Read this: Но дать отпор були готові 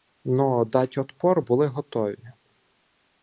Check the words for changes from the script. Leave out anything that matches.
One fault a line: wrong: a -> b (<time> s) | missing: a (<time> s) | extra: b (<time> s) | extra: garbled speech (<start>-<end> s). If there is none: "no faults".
no faults